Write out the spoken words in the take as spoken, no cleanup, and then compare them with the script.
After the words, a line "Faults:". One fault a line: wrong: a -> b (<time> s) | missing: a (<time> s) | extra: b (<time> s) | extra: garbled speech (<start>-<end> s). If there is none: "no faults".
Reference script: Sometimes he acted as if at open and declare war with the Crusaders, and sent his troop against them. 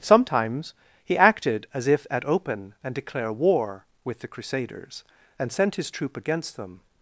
Sometimes he acted as if at open and declare war with the Crusaders, and sent his troop against them.
Faults:
no faults